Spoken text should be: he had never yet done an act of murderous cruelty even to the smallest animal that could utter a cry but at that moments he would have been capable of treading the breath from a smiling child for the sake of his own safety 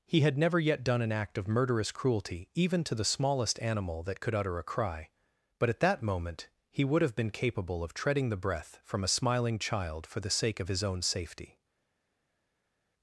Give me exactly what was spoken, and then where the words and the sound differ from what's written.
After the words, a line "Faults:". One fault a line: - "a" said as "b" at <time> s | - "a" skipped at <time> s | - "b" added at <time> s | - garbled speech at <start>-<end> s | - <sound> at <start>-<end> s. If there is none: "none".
he had never yet done an act of murderous cruelty even to the smallest animal that could utter a cry but at that moment he would have been capable of treading the breath from a smiling child for the sake of his own safety
Faults:
- "moments" said as "moment" at 6.0 s